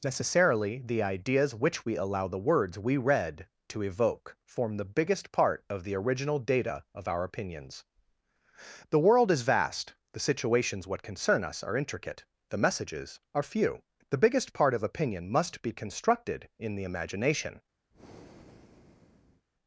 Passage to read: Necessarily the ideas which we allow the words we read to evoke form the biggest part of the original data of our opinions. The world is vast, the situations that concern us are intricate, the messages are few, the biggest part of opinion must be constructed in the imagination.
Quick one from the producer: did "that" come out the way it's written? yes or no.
no